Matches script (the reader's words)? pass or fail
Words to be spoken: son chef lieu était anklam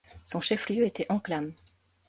pass